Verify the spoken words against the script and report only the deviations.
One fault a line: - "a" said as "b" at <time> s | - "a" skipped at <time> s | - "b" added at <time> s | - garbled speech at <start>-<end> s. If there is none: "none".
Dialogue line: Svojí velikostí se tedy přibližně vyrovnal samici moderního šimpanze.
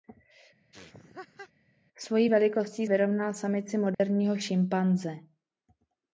- "se tedy přibližně" skipped at 2.9 s